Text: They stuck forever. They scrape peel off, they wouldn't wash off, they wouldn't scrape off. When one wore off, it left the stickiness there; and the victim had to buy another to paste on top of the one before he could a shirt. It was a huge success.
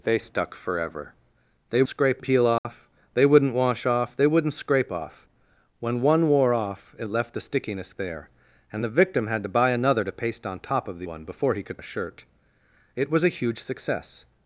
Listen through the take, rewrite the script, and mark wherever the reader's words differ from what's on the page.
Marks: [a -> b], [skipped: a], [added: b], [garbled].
They stuck forever. They scrape peel off, they wouldn't wash off, they wouldn't scrape off. When one wore off, it left the stickiness there; and the victim had to buy another to paste on top of the one before he could a shirt. It was a huge success.